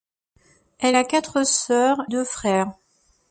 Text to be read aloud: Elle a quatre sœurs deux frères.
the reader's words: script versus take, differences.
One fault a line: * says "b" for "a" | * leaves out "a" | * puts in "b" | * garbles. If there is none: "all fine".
all fine